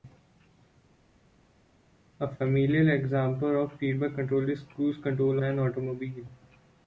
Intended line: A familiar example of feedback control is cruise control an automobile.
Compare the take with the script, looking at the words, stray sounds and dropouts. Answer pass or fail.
pass